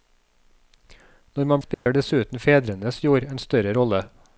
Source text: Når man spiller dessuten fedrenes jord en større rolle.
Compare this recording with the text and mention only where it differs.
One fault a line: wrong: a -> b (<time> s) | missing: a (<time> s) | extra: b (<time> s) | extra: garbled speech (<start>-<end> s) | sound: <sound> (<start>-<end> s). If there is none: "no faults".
sound: dropout (1.7-1.9 s)